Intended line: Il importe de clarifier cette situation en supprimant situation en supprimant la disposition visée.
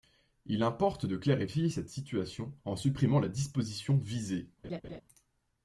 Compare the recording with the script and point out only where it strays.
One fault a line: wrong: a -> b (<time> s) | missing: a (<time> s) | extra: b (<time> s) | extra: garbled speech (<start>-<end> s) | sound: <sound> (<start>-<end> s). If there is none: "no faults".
missing: situation en supprimant (3.2 s)
sound: laugh (4.6-5.0 s)